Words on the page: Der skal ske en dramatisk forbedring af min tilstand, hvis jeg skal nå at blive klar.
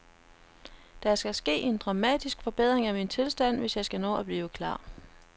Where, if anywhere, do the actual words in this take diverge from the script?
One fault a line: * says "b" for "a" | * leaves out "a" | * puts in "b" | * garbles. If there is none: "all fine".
all fine